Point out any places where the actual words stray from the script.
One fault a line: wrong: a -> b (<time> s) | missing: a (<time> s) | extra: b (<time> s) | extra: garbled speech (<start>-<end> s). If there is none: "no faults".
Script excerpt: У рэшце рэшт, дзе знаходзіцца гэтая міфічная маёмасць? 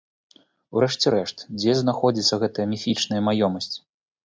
no faults